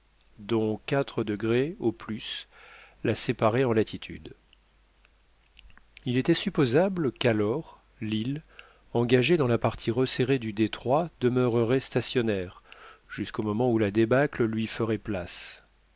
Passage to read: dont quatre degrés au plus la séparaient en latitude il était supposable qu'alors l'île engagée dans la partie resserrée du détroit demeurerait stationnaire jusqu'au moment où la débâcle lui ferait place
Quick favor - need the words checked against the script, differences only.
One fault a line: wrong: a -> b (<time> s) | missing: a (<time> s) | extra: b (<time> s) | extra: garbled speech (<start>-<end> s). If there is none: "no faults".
no faults